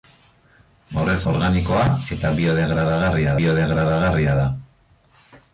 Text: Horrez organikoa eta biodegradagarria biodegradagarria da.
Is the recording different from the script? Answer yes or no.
no